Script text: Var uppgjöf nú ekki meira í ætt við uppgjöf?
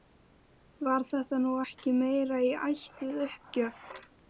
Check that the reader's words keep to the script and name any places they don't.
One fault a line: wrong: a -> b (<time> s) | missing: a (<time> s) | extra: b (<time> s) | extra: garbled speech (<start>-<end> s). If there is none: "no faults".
wrong: uppgjöf -> þetta (1.1 s)